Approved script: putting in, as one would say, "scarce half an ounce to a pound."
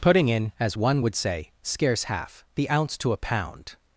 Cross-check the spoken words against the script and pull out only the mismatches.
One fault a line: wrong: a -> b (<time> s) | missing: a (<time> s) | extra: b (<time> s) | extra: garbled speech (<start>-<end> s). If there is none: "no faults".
wrong: an -> the (2.6 s)